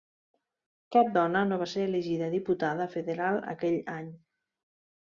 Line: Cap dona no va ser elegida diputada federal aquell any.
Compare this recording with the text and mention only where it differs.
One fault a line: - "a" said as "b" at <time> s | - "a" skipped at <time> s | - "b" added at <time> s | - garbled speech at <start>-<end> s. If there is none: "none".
none